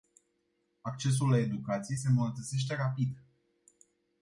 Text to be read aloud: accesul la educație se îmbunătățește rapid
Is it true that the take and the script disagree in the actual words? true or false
false